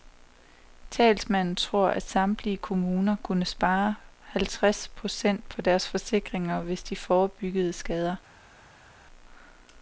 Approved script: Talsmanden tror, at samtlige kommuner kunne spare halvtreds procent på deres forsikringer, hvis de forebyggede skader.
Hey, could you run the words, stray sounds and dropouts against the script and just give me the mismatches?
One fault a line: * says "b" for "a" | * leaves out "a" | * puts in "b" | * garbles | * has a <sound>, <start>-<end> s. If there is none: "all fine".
all fine